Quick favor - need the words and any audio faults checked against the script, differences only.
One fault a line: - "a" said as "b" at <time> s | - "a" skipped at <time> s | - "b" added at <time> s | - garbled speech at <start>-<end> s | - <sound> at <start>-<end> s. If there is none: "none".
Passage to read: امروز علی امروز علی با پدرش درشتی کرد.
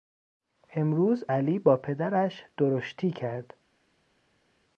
- "امروز علی" skipped at 1.6 s